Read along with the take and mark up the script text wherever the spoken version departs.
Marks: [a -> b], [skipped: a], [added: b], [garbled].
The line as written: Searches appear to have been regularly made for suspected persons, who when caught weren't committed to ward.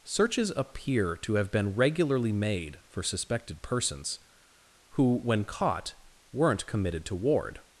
Searches appear to have been regularly made for suspected persons, who when caught weren't committed to ward.